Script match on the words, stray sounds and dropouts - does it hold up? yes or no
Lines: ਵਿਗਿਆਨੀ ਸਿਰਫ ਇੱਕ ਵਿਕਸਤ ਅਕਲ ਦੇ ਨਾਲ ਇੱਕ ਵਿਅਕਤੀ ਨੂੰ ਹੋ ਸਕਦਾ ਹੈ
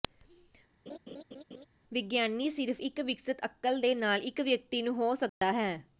no